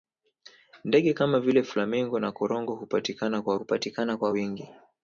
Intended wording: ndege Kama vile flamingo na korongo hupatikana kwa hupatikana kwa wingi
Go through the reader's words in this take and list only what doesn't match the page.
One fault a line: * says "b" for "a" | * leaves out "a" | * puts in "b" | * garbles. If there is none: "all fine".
all fine